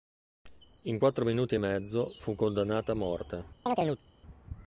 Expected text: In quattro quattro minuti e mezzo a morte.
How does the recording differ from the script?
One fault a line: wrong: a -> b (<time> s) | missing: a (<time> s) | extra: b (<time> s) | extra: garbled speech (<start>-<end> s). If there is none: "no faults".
missing: quattro (1.2 s)
extra: fu condannata (2.2 s)